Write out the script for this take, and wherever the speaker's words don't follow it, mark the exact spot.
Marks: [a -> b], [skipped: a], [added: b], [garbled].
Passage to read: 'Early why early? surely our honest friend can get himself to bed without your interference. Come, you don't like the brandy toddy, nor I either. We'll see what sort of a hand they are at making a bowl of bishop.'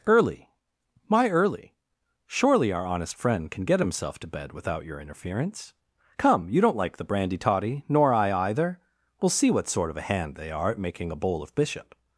'Early [why -> my] early? surely our honest friend can get himself to bed without your interference. Come, you don't like the brandy toddy, nor I either. We'll see what sort of a hand they are at making a bowl of bishop.'